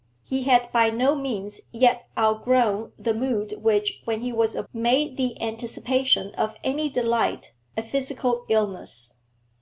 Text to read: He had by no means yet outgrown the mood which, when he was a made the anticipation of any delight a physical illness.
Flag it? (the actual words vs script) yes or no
no